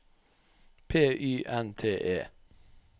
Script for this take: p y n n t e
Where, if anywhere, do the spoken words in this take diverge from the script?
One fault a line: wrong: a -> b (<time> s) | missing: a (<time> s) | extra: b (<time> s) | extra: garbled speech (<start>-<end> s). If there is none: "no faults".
missing: n (1.8 s)